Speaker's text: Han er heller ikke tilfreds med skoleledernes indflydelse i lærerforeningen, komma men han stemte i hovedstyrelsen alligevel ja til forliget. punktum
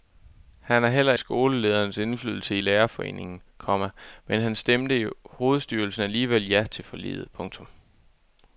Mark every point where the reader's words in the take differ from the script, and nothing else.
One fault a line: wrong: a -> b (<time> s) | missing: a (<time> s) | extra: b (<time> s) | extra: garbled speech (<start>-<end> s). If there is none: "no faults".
missing: ikke tilfreds med (1.1 s)